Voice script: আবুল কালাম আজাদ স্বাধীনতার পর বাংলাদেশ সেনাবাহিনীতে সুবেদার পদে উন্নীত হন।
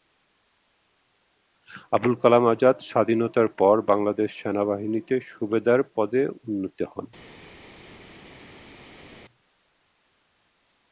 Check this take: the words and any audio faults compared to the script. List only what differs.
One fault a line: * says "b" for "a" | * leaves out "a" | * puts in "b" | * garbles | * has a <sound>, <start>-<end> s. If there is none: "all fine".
all fine